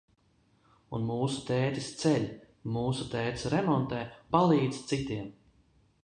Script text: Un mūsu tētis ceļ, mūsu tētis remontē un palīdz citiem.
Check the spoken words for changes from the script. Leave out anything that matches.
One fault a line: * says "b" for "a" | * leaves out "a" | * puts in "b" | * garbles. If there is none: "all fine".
* leaves out "un"